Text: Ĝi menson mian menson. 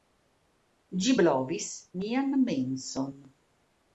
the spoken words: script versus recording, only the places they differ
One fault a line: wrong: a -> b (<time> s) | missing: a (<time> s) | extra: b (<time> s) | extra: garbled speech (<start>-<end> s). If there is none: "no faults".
wrong: menson -> blovis (1.2 s)